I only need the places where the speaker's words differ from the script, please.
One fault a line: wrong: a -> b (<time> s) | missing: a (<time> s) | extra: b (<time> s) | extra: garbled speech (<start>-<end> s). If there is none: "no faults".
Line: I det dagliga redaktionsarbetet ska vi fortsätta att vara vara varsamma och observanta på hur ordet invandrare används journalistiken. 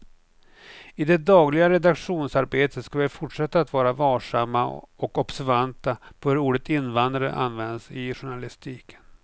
missing: vara (3.9 s)
extra: i (7.9 s)